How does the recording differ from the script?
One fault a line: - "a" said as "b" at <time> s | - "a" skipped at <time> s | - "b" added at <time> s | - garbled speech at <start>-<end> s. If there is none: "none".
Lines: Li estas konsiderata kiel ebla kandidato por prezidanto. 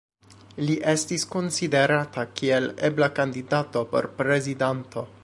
- "estas" said as "estis" at 0.9 s